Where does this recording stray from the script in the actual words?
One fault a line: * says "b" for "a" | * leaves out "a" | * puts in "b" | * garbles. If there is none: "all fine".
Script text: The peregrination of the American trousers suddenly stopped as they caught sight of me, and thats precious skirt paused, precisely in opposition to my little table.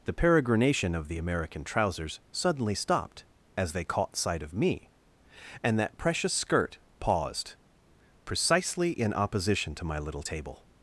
* says "that" for "thats"